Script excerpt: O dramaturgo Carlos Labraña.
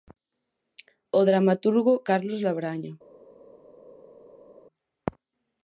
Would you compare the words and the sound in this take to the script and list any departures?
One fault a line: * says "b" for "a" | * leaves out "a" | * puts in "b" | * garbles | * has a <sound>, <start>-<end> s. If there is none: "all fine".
all fine